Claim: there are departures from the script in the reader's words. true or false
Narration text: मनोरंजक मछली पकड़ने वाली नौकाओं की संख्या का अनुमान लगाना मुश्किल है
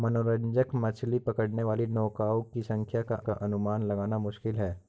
true